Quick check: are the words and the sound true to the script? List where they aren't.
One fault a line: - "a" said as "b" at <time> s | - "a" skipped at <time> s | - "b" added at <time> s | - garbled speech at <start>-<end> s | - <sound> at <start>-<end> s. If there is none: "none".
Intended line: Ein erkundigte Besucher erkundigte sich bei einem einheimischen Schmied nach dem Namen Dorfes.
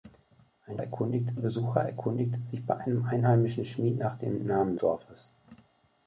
none